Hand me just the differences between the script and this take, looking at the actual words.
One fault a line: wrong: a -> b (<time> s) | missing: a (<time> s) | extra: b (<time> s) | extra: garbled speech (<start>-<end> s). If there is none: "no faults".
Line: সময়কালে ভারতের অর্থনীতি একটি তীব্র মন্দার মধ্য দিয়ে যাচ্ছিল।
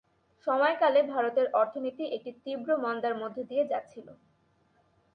no faults